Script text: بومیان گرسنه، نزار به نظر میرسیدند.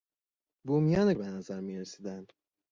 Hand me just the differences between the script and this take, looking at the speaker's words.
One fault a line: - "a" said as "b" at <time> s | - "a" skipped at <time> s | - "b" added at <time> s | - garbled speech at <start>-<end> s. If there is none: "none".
- "گرسنه نزار" skipped at 1.1 s